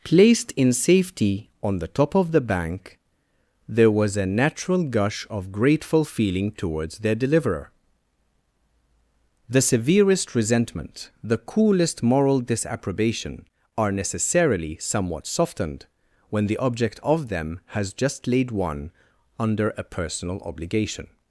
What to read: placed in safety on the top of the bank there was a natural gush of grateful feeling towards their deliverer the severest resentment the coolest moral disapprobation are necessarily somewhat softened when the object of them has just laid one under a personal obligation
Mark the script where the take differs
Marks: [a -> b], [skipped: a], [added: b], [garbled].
placed in safety on the top of the bank there was a natural gush of grateful feeling towards their deliverer the severest resentment the coolest moral disapprobation are necessarily somewhat softened when the object of them has just laid one under a personal obligation